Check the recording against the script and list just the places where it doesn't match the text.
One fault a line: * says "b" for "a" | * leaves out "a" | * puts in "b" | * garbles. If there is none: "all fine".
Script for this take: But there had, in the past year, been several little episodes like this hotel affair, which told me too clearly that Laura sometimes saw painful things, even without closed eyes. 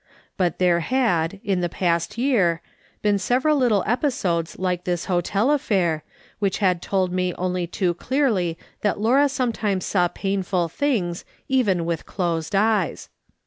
* puts in "had"
* puts in "only"
* says "with" for "without"